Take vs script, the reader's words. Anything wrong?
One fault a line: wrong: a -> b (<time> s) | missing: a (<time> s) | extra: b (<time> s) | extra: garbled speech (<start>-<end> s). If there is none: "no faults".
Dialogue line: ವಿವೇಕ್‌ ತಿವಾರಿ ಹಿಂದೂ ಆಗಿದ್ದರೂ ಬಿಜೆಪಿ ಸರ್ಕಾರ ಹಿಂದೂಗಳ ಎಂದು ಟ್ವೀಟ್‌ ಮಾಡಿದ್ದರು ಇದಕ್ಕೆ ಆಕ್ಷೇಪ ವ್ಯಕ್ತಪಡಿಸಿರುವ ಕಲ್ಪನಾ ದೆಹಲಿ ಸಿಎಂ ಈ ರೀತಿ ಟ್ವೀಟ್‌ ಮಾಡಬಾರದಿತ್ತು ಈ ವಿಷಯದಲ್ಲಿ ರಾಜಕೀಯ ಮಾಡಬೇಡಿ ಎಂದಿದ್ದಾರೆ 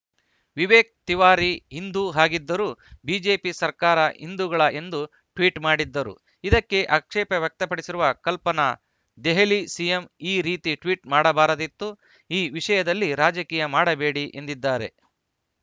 no faults